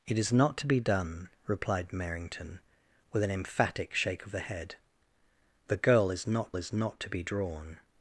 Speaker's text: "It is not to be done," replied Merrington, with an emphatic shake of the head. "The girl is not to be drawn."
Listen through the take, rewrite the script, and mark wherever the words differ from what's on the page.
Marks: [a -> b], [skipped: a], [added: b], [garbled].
"It is not to be done," replied Merrington, with an emphatic shake of the head. "The girl is not [added: is not] to be drawn."